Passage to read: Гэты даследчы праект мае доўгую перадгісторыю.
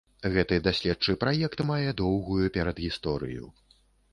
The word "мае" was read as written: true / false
true